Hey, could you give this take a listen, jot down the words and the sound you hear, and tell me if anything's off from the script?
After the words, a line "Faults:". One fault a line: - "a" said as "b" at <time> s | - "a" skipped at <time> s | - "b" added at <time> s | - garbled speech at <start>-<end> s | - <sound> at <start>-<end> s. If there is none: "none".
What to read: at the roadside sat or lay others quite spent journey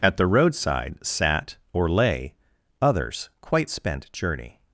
at the roadside sat or lay others quite spent journey
Faults:
none